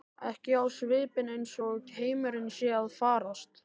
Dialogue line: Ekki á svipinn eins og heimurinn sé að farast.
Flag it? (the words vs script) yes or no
no